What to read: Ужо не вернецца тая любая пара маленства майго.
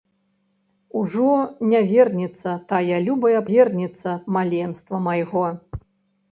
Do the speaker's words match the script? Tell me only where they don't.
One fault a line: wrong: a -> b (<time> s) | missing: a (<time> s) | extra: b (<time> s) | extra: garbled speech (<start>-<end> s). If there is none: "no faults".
wrong: пара -> вернецца (3.5 s)